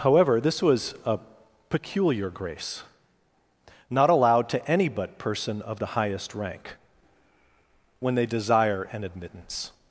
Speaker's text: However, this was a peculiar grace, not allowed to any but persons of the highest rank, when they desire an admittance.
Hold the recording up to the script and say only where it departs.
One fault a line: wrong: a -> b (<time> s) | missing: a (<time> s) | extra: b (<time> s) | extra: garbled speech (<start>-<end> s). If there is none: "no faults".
wrong: persons -> person (5.2 s)